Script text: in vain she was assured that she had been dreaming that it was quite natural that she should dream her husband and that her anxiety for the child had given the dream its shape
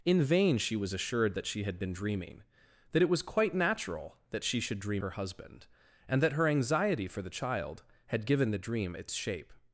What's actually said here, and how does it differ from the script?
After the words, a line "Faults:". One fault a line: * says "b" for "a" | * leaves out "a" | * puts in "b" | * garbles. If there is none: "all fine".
in vain she was assured that she had been dreaming that it was quite natural that she should dream her husband and that her anxiety for the child had given the dream its shape
Faults:
all fine